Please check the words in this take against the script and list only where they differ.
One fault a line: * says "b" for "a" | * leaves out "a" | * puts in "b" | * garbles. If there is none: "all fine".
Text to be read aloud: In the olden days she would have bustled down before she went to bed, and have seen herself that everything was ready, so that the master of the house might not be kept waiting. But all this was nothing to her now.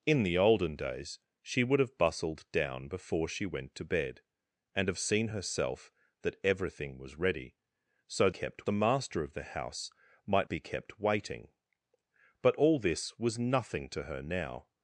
* says "kept" for "that"
* leaves out "not"